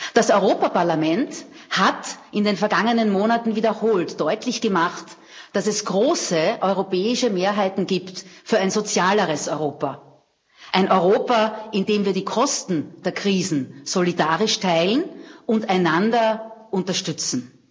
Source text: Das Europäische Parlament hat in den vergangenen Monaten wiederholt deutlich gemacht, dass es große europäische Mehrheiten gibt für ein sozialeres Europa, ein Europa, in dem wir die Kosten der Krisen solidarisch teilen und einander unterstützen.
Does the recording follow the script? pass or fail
pass